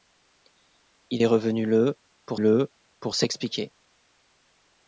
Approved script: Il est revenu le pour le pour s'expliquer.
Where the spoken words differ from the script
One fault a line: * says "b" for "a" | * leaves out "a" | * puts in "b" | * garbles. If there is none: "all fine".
all fine